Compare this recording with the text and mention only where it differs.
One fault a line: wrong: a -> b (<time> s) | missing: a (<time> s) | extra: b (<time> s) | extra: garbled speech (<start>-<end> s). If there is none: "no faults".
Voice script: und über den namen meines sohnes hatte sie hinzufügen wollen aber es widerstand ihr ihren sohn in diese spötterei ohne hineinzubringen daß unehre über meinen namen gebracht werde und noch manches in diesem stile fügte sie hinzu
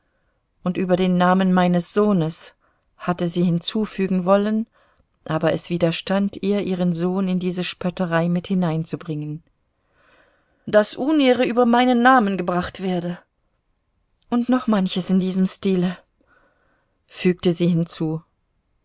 wrong: ohne -> mit (8.3 s)